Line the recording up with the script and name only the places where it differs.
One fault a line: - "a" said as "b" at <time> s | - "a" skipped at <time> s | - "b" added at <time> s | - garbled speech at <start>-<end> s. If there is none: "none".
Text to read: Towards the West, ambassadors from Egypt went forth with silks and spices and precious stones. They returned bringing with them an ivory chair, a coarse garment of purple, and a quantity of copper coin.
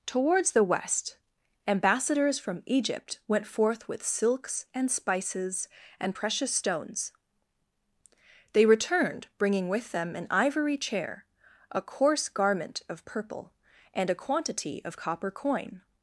none